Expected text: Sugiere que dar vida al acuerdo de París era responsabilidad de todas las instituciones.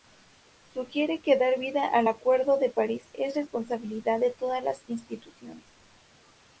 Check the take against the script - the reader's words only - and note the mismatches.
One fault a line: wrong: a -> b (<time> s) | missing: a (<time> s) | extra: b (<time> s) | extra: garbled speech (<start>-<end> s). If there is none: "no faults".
wrong: era -> es (3.1 s)